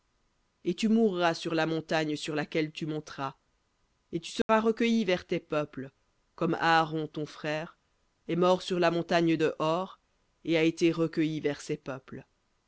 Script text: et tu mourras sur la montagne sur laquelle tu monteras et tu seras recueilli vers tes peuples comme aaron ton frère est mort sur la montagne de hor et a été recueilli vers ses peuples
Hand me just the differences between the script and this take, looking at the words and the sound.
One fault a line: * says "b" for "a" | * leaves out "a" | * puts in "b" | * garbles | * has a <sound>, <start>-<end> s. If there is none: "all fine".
* has a dropout, 4.4-4.5 s